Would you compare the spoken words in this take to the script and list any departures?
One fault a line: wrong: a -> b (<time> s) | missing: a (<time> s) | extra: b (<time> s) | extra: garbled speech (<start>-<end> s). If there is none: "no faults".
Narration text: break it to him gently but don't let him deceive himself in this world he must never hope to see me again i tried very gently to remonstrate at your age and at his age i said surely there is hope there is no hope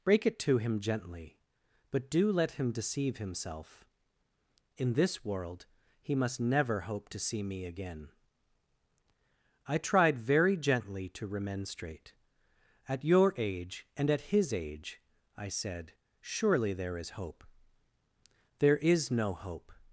wrong: don't -> do (2.1 s)